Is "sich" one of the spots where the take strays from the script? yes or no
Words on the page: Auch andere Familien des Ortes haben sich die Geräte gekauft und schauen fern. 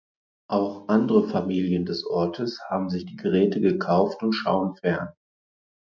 no